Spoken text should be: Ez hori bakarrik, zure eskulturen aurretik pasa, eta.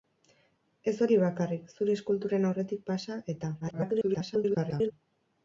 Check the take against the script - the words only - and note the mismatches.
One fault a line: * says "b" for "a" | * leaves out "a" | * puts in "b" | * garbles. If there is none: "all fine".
* garbles